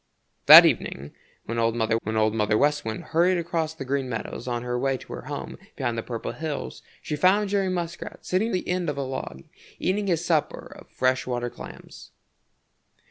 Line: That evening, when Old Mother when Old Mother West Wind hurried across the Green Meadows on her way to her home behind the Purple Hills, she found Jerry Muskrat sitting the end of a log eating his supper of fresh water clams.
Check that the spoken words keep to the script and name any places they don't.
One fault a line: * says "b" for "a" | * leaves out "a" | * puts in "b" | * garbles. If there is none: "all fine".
all fine